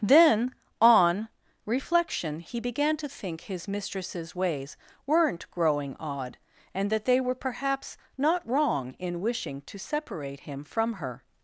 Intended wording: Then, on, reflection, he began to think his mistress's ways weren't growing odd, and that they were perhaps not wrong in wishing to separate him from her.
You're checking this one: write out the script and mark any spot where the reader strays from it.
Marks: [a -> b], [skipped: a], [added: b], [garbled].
Then, on, reflection, he began to think his mistress's ways weren't growing odd, and that they were perhaps not wrong in wishing to separate him from her.